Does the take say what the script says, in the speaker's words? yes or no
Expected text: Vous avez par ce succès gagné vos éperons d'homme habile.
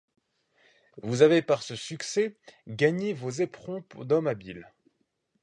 yes